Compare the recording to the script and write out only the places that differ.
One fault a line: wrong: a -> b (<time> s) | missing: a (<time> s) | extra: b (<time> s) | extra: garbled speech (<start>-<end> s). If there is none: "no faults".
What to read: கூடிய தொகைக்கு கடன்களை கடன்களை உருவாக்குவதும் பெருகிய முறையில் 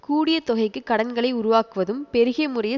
missing: கடன்களை (1.3 s)